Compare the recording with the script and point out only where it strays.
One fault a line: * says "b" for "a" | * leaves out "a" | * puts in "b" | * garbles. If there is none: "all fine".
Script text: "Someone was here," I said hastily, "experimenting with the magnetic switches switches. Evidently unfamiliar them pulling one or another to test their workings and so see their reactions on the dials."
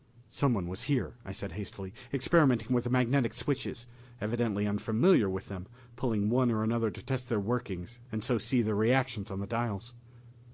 * leaves out "switches"
* puts in "with"